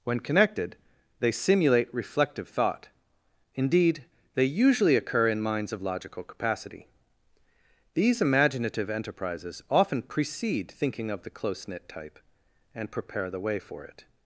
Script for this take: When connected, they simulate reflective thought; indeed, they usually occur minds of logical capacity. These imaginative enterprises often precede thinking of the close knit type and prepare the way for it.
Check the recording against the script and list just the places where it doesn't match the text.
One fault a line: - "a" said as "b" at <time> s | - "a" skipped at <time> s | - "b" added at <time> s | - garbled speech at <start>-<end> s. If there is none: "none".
- "in" added at 5.3 s